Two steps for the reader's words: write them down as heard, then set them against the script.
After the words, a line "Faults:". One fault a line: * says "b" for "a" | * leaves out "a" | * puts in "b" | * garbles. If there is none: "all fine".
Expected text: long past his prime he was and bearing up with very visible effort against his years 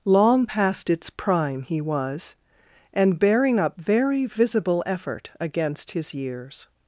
long past its prime he was and bearing up very visible effort against his years
Faults:
* says "its" for "his"
* leaves out "with"